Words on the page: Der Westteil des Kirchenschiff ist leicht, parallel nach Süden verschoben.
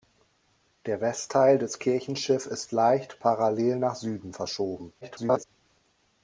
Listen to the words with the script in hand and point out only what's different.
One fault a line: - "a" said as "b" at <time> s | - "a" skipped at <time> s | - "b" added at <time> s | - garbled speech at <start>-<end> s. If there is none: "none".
- garbled speech at 5.0-5.4 s